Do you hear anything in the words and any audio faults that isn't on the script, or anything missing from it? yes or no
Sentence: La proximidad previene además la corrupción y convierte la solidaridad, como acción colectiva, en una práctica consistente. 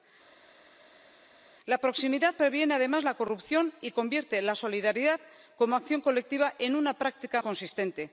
no